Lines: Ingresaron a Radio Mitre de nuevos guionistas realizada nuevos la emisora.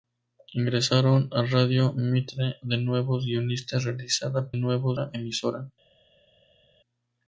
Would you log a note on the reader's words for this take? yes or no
no